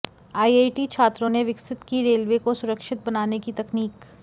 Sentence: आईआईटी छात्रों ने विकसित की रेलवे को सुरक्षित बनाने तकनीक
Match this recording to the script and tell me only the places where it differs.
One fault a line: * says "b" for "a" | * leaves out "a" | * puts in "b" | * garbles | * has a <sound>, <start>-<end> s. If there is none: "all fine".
* puts in "की"